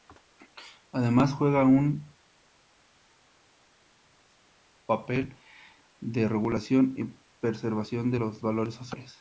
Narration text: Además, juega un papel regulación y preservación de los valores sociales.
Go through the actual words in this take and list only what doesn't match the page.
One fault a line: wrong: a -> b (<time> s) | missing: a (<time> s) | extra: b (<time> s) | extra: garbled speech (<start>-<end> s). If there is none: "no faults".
extra: de (6.0 s)